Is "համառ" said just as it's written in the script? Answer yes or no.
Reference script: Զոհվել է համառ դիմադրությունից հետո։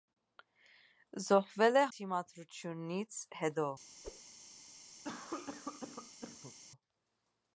no